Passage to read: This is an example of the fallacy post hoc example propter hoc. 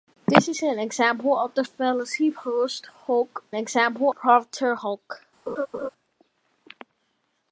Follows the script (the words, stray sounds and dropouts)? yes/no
no